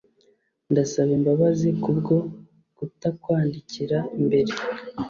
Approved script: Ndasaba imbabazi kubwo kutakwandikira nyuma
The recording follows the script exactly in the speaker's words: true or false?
false